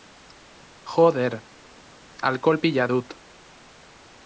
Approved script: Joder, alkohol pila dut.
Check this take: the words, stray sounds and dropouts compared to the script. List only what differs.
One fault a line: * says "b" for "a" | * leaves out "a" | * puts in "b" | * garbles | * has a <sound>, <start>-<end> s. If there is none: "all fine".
all fine